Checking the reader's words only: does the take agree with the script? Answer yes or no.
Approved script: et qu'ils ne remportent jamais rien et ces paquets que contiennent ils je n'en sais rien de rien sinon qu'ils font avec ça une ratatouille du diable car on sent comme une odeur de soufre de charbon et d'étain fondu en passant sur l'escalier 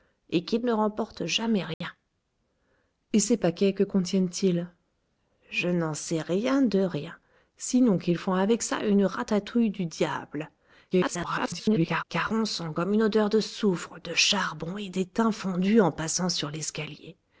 no